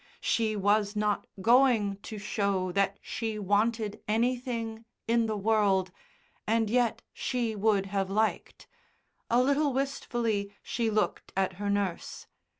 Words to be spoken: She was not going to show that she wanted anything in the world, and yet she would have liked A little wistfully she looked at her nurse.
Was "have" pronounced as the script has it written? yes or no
yes